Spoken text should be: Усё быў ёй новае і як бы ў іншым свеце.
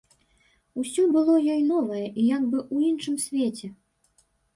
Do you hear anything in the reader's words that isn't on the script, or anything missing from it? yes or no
yes